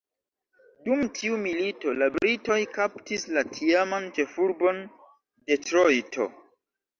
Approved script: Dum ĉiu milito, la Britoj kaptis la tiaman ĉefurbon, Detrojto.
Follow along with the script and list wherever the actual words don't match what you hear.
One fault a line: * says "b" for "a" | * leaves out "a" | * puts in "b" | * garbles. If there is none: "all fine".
* says "tiu" for "ĉiu"